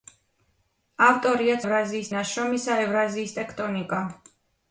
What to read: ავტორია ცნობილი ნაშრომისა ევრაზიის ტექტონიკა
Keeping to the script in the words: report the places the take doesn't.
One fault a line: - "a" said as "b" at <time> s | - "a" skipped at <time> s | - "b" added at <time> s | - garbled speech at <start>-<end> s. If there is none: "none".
- "ცნობილი" said as "ევრაზიის" at 1.6 s